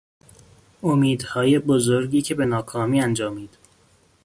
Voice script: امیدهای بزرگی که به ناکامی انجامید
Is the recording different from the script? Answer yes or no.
no